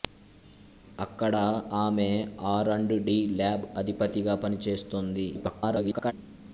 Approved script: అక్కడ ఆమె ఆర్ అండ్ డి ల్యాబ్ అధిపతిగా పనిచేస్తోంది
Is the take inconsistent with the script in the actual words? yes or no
yes